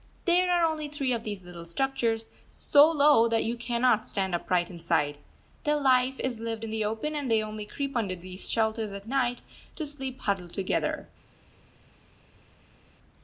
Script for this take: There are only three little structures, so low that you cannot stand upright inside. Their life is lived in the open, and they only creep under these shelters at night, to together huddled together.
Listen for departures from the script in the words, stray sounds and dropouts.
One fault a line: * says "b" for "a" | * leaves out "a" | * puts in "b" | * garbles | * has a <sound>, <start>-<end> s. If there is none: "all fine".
* puts in "of these"
* says "sleep" for "together"